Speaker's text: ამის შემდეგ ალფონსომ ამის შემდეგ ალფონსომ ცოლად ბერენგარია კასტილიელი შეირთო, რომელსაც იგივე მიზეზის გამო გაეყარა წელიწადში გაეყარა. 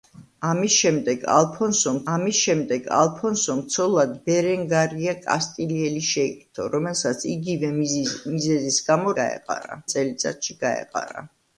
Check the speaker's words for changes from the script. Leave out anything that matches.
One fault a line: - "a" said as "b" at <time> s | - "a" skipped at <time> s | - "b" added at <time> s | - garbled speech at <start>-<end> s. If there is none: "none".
none